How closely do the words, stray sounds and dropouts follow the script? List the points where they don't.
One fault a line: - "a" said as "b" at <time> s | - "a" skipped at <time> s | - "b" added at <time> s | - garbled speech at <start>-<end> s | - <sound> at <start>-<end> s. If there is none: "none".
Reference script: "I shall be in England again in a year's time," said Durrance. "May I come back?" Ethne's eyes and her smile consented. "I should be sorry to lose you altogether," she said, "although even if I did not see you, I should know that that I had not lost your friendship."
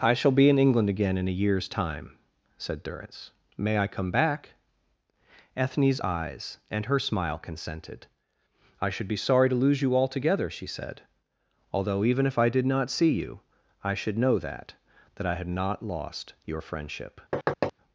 - thud at 17.3-17.7 s